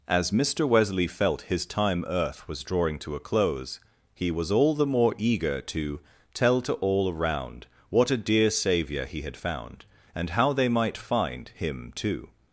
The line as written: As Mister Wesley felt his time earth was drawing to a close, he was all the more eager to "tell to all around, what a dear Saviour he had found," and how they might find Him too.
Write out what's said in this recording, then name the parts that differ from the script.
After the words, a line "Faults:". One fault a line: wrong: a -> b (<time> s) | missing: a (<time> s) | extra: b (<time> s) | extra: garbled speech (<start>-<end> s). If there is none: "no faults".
As Mister Wesley felt his time earth was drawing to a close, he was all the more eager to "tell to all around, what a dear Saviour he had found," and how they might find Him too.
Faults:
no faults